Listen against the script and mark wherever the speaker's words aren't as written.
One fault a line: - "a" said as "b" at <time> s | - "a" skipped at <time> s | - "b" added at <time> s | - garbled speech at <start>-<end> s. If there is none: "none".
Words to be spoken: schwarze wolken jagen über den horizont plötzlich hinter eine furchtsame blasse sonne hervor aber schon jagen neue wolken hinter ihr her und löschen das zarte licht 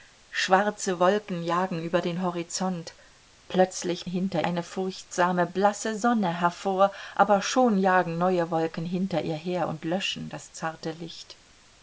none